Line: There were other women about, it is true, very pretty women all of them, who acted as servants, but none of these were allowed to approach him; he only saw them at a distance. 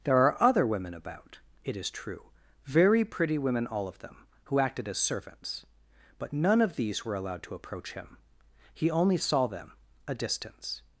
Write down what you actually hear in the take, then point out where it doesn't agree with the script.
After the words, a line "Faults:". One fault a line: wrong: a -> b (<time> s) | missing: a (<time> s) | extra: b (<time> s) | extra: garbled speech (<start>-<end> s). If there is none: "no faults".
There are other women about, it is true, very pretty women all of them, who acted as servants, but none of these were allowed to approach him; he only saw them a distance.
Faults:
wrong: were -> are (0.2 s)
missing: at (9.7 s)